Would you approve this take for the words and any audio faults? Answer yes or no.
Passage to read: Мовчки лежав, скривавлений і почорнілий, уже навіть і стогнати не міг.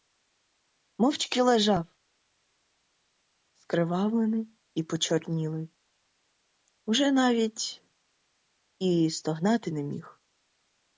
yes